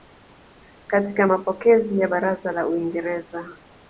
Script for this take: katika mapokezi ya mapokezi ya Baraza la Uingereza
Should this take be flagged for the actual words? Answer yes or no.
yes